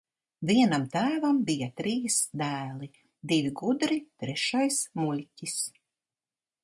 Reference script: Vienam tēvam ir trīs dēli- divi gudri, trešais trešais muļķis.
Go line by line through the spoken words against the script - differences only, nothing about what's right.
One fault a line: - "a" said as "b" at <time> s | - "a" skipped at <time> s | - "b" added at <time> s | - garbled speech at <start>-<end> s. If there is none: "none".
- "ir" said as "bija" at 1.5 s
- "trešais" skipped at 4.8 s